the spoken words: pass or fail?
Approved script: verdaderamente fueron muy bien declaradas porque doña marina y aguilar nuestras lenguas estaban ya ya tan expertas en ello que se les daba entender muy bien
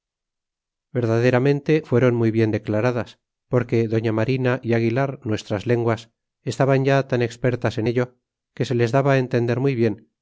fail